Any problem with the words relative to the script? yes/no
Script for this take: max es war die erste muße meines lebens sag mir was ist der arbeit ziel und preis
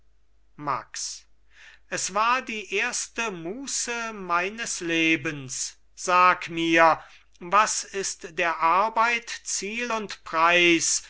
no